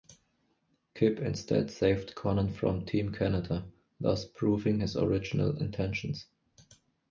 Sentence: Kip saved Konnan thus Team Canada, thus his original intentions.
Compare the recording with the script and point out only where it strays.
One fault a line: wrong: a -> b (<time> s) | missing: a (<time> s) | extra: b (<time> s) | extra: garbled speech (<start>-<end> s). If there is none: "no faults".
extra: instead (1.2 s)
wrong: thus -> from (2.5 s)
extra: proving (4.2 s)